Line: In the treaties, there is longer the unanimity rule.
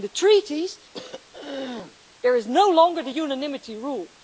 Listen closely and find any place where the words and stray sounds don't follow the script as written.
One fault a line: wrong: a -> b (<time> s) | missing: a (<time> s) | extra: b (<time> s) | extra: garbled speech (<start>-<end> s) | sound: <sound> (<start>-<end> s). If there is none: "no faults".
sound: throat clearing (0.9-2.0 s)
extra: no (2.4 s)